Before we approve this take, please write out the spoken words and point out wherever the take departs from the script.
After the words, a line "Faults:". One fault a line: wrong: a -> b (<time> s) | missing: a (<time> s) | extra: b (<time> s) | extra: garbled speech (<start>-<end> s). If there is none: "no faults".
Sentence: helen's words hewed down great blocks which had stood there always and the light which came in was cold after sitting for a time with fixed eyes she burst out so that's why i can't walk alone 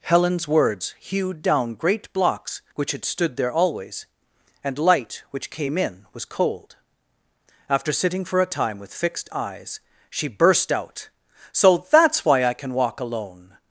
helen's words hewed down great blocks which had stood there always and light which came in was cold after sitting for a time with fixed eyes she burst out so that's why i can walk alone
Faults:
missing: the (4.8 s)
wrong: can't -> can (12.5 s)